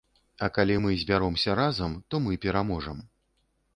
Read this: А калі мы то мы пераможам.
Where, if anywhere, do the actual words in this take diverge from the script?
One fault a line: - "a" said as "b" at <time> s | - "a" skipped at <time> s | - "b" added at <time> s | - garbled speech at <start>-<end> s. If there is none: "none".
- "збяромся разам" added at 1.0 s